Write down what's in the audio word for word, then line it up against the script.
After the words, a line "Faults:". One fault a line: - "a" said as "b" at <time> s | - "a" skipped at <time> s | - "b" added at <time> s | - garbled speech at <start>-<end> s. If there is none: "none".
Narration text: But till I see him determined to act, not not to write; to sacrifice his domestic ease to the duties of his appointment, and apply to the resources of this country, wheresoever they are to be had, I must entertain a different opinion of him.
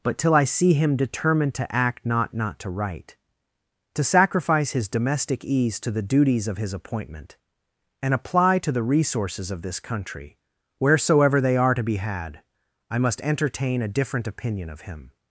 But till I see him determined to act, not not to write; to sacrifice his domestic ease to the duties of his appointment, and apply to the resources of this country, wheresoever they are to be had, I must entertain a different opinion of him.
Faults:
none